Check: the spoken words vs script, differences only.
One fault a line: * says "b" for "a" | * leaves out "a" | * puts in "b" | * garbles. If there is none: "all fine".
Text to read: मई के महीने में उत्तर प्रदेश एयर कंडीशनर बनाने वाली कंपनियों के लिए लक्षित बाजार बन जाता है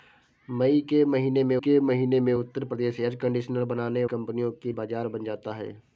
* puts in "के महीने में"
* leaves out "वाली"
* leaves out "लिए लक्षित"